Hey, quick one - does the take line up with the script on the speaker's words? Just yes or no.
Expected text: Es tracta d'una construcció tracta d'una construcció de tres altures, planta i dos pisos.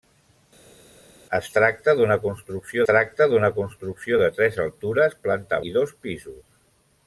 yes